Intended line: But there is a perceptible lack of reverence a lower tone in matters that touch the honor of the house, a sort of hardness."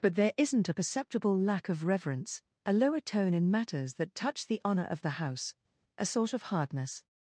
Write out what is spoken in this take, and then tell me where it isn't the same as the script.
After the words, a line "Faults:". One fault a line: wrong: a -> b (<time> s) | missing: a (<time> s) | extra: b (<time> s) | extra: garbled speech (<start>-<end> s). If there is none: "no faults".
But there isn't a perceptible lack of reverence a lower tone in matters that touch the honor of the house, a sort of hardness."
Faults:
wrong: is -> isn't (0.3 s)